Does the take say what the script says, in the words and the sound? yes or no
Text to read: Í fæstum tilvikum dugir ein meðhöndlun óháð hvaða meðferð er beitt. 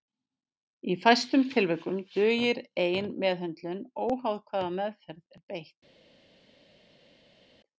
yes